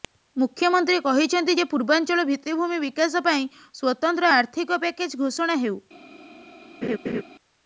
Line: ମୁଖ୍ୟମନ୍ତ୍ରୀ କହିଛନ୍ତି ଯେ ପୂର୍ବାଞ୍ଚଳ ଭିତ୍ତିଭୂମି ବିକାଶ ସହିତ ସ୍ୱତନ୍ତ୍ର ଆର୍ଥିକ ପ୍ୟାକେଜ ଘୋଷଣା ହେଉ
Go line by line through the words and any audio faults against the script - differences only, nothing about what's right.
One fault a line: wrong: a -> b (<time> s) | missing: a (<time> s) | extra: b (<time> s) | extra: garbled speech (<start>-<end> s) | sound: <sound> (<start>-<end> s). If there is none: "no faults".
wrong: ସହିତ -> ପାଇଁ (3.3 s)
sound: laugh (6.8-7.2 s)